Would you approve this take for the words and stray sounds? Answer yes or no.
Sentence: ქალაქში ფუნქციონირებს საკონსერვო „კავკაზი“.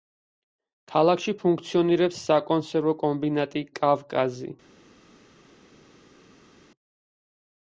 no